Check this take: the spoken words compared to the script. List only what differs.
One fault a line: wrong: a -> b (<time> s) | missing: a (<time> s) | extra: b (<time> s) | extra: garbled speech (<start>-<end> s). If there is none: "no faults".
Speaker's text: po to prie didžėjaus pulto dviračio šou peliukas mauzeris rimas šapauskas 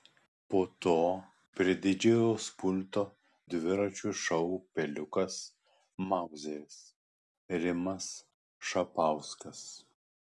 no faults